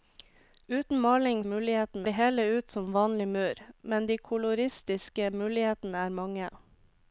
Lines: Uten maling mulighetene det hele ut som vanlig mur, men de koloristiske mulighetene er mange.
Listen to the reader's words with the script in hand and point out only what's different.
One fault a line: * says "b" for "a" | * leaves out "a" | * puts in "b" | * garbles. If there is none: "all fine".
all fine